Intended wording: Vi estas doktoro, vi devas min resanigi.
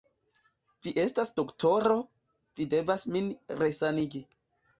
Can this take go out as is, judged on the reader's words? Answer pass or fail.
pass